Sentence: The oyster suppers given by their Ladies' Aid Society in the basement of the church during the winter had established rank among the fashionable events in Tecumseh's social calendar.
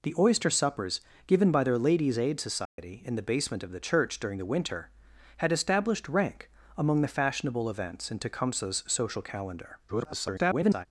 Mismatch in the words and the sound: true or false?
true